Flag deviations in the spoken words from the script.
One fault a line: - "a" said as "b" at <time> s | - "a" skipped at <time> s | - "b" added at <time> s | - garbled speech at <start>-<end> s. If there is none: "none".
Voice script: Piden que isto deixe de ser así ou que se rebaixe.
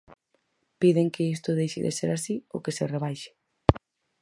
none